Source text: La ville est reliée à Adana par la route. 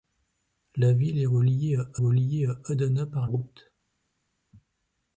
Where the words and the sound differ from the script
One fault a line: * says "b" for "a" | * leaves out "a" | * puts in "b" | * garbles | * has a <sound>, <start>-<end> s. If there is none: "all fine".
* puts in "reliée à"
* leaves out "la"